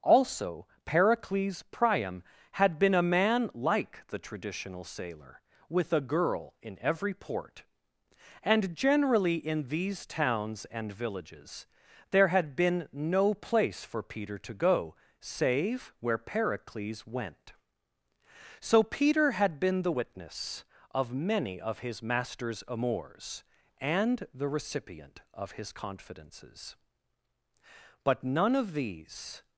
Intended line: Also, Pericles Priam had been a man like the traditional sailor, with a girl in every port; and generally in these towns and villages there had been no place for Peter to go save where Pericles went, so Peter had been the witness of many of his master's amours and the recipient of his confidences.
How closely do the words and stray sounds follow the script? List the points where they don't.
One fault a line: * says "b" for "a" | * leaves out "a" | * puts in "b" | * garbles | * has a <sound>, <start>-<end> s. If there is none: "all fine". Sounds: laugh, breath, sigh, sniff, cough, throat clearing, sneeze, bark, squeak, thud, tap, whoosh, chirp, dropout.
* puts in "But none of these"